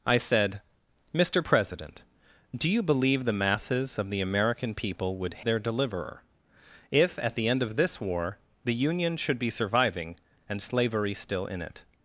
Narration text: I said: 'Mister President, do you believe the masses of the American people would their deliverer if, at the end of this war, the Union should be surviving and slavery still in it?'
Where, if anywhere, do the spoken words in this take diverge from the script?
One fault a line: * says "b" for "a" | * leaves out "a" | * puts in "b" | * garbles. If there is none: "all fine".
all fine